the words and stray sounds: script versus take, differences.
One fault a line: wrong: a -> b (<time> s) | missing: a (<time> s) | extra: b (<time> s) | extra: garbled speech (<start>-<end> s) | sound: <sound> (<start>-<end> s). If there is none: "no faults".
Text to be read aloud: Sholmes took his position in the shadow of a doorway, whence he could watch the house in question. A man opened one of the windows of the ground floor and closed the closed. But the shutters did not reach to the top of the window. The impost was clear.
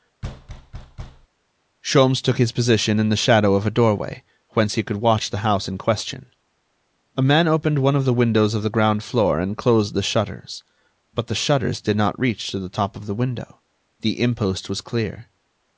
sound: thud (0.2-1.3 s)
wrong: closed -> shutters (10.0 s)